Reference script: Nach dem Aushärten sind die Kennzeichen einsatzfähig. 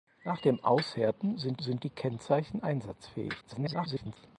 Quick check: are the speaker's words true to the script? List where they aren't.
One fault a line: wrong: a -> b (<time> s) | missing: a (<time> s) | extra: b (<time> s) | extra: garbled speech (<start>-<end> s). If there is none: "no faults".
extra: sind (1.6 s)
extra: garbled speech (3.4-4.2 s)